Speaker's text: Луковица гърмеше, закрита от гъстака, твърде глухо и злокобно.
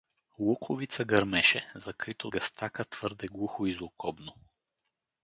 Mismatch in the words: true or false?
true